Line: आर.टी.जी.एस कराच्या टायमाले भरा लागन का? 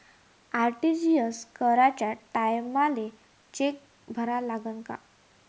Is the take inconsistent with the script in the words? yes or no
yes